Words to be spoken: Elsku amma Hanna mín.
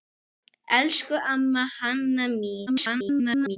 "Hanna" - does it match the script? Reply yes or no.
yes